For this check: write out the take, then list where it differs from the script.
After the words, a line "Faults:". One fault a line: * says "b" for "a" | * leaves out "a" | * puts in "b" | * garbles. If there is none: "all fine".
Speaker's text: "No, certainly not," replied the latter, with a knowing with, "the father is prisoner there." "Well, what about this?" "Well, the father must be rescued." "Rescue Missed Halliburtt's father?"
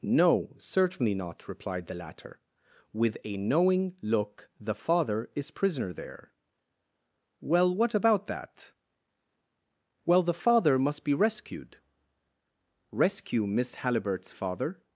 "No, certainly not," replied the latter, with a knowing look, "the father is prisoner there." "Well, what about that?" "Well, the father must be rescued." "Rescue Miss Halliburtt's father?"
Faults:
* says "look" for "with"
* says "that" for "this"
* says "Miss" for "Missed"